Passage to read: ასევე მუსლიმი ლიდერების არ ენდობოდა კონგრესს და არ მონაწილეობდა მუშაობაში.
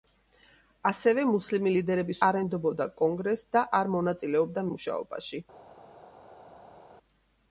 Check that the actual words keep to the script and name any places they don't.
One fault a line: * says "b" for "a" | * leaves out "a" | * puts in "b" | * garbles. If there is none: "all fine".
all fine